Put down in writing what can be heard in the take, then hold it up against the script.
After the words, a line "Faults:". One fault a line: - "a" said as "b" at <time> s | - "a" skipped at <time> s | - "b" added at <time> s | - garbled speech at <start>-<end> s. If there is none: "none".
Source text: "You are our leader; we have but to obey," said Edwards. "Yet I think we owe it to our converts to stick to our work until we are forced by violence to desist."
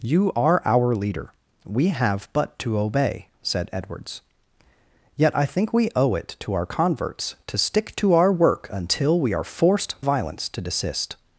"You are our leader; we have but to obey," said Edwards. "Yet I think we owe it to our converts to stick to our work until we are forced violence to desist."
Faults:
- "by" skipped at 10.0 s